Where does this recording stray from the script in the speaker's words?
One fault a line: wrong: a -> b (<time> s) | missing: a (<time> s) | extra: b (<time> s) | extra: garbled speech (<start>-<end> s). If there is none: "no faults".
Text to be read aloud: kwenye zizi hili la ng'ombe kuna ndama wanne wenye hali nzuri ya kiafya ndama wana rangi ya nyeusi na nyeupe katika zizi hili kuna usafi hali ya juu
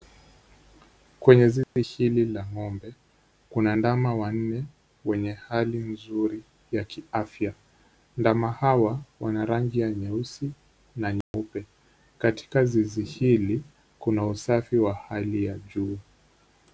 extra: hawa (8.5 s)
extra: wa (14.8 s)